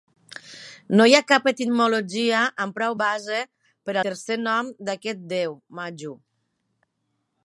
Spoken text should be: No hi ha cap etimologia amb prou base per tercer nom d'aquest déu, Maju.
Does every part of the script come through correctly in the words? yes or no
yes